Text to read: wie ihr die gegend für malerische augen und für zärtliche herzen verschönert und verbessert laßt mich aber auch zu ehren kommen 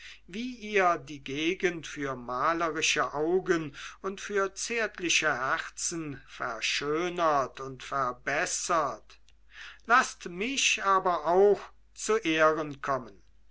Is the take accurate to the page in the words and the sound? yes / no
yes